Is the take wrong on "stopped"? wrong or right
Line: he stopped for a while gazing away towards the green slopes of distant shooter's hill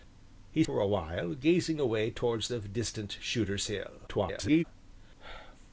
wrong